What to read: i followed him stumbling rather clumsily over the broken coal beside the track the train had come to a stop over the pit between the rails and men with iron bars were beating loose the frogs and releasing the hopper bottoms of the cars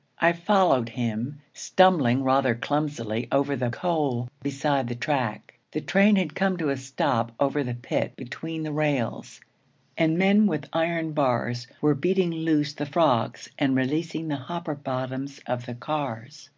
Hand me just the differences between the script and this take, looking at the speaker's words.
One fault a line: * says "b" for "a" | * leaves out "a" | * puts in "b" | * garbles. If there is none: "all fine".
* leaves out "broken"